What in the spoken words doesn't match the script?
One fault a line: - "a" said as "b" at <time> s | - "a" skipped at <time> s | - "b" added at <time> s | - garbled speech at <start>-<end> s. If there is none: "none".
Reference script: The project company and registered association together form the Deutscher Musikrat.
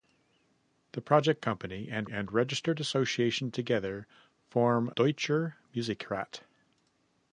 - "and" added at 2.1 s
- "the" skipped at 4.9 s